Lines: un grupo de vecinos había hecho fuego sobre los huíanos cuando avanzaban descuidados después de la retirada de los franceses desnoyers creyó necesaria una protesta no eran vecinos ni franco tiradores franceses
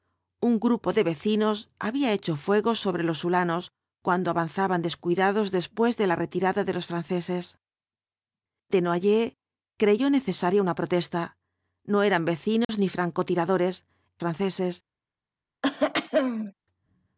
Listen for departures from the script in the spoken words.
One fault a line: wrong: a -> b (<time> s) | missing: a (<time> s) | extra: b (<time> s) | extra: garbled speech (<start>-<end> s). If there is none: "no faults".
no faults